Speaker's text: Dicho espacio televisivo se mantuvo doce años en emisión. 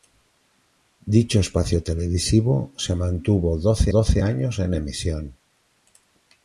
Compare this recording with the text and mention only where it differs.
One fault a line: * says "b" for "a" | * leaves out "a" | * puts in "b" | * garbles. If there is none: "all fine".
* puts in "doce"